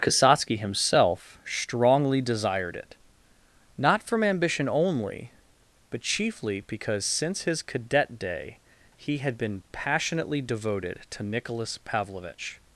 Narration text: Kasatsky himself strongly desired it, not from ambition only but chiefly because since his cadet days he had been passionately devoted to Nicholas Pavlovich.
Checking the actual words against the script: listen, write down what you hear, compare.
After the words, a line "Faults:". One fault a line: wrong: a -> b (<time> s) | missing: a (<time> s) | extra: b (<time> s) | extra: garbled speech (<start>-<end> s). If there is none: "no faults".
Kasatsky himself strongly desired it, not from ambition only but chiefly because since his cadet day he had been passionately devoted to Nicholas Pavlovich.
Faults:
wrong: days -> day (8.2 s)